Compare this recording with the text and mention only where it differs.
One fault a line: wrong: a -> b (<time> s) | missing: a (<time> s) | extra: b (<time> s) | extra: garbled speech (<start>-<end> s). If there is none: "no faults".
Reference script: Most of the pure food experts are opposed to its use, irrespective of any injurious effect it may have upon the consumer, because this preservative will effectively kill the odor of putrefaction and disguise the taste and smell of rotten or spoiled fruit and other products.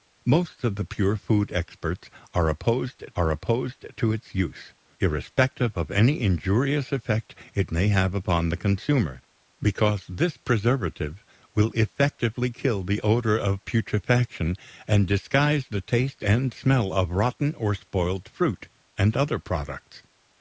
extra: are opposed (3.1 s)